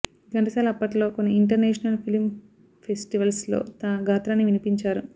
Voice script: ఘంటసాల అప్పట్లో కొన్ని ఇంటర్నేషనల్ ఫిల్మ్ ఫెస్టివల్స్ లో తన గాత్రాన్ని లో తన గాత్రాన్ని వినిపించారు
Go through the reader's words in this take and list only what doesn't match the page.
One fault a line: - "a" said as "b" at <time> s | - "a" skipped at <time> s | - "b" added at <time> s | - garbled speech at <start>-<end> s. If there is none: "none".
- "లో తన గాత్రాన్ని" skipped at 4.5 s